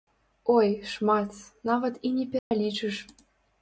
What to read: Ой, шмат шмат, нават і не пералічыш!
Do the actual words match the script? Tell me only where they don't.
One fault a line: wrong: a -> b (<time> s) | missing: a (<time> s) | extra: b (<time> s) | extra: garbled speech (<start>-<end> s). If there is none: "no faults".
missing: шмат (1.4 s)